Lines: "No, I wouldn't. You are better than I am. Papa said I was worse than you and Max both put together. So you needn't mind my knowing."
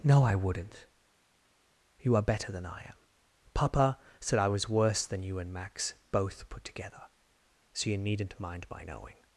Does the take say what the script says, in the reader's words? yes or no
yes